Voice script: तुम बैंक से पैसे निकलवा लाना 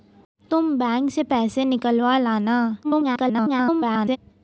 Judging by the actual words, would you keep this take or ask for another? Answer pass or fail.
fail